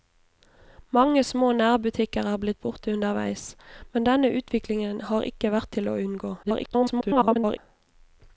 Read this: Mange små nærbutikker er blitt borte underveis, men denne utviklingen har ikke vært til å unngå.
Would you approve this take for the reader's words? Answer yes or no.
no